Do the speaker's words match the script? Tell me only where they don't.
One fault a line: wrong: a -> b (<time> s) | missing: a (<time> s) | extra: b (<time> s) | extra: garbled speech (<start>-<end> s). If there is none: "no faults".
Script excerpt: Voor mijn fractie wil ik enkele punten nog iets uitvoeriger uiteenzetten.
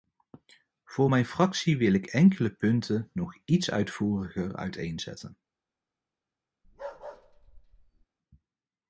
no faults